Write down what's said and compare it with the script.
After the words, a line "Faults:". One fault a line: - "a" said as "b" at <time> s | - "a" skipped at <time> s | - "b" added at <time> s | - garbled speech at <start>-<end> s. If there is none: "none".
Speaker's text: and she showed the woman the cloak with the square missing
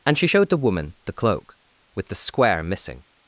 and she showed the woman the cloak with the square missing
Faults:
none